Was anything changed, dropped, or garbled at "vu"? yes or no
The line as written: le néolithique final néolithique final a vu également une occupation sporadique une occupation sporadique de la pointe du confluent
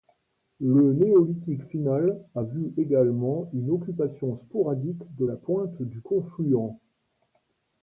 no